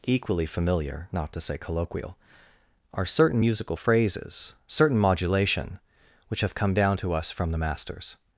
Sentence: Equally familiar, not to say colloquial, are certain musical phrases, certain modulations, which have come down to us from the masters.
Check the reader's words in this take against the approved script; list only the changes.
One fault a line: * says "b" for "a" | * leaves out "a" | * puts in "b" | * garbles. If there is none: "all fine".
* says "modulation" for "modulations"